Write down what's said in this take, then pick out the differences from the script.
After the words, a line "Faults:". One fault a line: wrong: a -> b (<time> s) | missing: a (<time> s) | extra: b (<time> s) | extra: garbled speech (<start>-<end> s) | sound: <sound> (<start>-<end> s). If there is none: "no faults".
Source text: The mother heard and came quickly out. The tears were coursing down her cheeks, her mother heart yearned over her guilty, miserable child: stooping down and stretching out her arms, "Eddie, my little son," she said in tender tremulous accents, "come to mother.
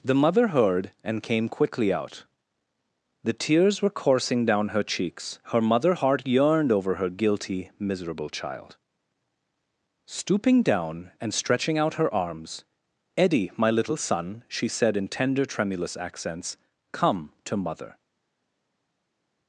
The mother heard and came quickly out. The tears were coursing down her cheeks, her mother heart yearned over her guilty, miserable child: stooping down and stretching out her arms, "Eddie, my little son," she said in tender tremulous accents, "come to mother.
Faults:
no faults